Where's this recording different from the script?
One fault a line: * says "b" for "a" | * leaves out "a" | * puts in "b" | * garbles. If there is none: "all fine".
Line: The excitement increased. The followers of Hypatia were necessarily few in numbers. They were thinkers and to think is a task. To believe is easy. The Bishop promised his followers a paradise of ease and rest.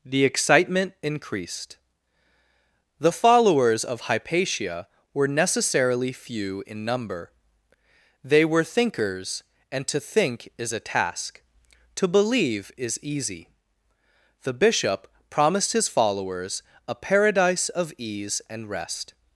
* says "number" for "numbers"